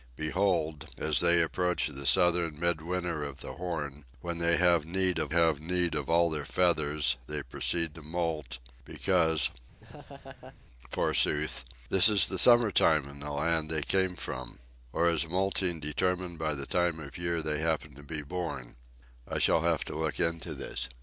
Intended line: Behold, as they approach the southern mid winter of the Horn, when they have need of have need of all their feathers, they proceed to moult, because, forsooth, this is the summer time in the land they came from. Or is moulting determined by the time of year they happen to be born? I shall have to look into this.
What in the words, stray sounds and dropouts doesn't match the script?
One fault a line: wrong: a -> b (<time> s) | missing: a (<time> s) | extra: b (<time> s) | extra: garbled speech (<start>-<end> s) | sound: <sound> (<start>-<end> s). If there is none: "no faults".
sound: laugh (9.8-10.6 s)